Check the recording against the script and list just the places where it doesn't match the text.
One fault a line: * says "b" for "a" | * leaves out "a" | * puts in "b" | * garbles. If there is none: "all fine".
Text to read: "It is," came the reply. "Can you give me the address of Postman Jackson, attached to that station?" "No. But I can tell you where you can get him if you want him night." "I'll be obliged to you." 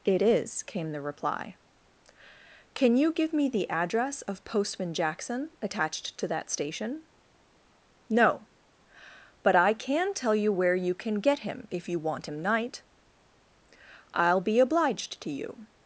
all fine